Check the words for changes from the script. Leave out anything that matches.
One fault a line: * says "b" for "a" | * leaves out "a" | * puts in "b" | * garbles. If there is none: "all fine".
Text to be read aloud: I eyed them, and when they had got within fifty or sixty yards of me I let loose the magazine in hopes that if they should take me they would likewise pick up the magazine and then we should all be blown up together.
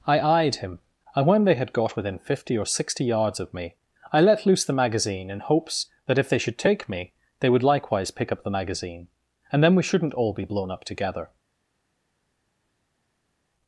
* says "him" for "them"
* says "shouldn't" for "should"